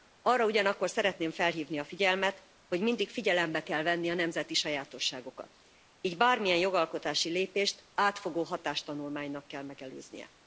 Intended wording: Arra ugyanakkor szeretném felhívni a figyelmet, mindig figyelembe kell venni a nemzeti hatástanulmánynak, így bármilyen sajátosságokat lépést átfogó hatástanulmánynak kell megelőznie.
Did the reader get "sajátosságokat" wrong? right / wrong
wrong